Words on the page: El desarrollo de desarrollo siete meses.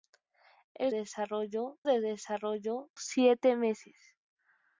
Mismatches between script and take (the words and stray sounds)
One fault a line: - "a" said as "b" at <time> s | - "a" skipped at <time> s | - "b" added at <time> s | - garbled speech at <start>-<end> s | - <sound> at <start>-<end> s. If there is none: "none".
none